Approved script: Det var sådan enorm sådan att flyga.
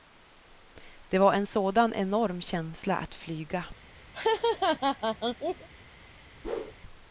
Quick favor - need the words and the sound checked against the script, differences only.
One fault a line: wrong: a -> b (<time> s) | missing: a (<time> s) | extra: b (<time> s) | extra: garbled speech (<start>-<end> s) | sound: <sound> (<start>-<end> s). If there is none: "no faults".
extra: en (1.3 s)
wrong: sådan -> känsla (2.4 s)
sound: laugh (4.1-5.7 s)
sound: whoosh (6.4-6.7 s)